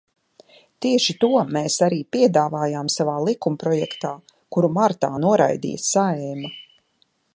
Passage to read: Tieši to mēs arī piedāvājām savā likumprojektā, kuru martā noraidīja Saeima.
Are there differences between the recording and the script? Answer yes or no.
no